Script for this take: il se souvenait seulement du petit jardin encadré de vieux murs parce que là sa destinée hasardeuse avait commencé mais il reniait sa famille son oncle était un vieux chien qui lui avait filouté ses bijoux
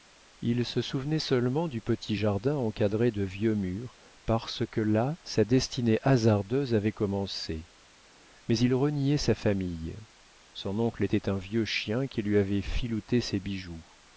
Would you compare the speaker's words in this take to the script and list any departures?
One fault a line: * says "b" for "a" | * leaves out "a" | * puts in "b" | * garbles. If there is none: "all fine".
all fine